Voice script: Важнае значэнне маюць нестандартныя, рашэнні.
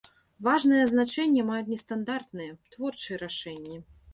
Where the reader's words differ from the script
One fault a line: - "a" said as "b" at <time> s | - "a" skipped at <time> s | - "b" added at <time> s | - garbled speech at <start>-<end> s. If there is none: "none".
- "творчыя" added at 2.8 s